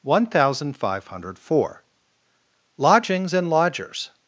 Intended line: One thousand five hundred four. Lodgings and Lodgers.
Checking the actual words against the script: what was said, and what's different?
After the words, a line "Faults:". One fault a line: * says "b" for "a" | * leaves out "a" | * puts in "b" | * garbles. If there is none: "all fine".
One thousand five hundred four. Lodgings and Lodgers.
Faults:
all fine